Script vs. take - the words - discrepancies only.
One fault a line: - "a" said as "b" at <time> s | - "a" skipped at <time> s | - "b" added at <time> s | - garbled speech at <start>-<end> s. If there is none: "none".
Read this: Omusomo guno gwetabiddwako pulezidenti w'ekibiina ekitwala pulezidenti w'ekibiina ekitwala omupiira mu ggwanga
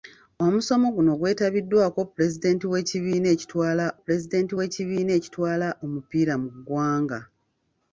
none